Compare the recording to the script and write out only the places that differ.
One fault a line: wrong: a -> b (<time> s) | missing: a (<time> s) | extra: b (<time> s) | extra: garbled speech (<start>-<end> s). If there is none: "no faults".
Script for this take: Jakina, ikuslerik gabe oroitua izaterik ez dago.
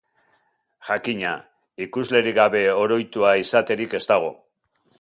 no faults